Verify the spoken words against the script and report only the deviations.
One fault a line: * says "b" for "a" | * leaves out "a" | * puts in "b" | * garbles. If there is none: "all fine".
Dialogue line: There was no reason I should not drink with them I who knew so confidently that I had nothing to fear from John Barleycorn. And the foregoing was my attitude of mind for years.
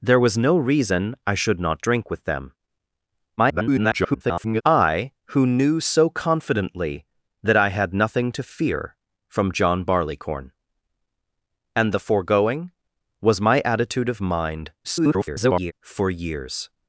* garbles
* garbles